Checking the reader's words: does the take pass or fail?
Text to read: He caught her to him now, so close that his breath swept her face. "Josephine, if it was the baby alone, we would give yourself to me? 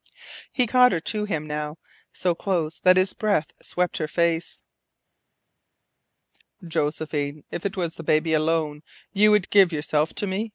fail